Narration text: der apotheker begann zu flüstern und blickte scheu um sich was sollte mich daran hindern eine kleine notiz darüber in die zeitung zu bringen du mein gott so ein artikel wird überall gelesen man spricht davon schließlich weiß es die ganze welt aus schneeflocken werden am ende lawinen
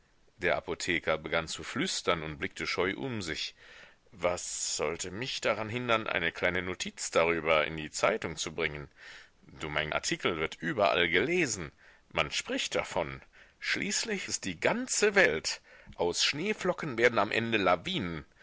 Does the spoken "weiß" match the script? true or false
false